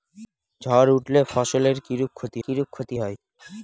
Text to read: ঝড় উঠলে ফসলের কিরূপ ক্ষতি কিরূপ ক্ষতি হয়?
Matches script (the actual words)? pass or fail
pass